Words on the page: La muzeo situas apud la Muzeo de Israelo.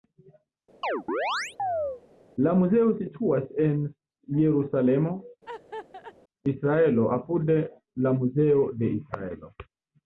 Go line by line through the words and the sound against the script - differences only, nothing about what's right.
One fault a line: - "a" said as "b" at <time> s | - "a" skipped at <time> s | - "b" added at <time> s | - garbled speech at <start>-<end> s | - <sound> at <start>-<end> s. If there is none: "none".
- chirp at 0.8-2.0 s
- "en Jerusalemo Israelo" added at 3.6 s
- laugh at 5.5-6.1 s